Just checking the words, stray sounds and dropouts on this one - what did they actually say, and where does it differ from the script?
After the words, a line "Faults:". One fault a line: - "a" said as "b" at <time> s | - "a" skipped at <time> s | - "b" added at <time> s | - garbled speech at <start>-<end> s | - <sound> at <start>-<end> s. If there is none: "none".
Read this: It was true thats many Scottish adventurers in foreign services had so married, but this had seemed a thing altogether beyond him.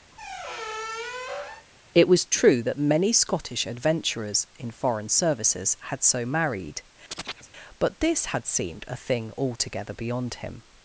It was true that many Scottish adventurers in foreign services had so married, but this had seemed a thing altogether beyond him.
Faults:
- squeak at 0.1-1.7 s
- "thats" said as "that" at 2.6 s
- chirp at 7.1-7.5 s